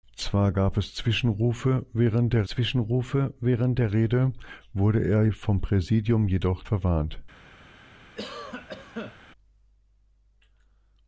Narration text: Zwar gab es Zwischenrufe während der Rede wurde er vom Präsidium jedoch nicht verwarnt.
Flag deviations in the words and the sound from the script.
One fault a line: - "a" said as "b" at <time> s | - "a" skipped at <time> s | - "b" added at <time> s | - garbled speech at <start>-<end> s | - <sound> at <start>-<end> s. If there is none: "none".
- "Zwischenrufe während der" added at 2.5 s
- "nicht" skipped at 6.7 s
- cough at 8.1-9.2 s